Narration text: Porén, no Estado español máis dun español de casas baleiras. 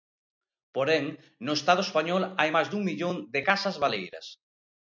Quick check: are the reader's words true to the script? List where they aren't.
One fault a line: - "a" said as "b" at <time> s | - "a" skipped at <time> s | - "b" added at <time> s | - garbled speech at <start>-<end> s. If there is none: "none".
- "hai" added at 2.4 s
- "español" said as "millón" at 2.9 s